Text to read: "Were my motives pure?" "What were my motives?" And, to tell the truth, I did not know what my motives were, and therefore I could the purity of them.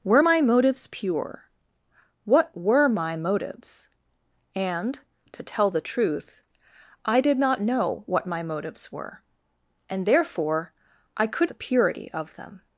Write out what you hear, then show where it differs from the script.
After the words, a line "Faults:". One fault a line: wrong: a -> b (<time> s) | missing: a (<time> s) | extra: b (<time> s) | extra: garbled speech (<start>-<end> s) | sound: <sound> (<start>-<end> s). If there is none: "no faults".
"Were my motives pure?" "What were my motives?" And, to tell the truth, I did not know what my motives were, and therefore I could the purity of them.
Faults:
no faults